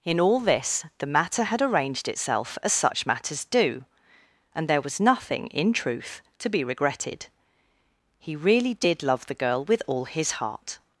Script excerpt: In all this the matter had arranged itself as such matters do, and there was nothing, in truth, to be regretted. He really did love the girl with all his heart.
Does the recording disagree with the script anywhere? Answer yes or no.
no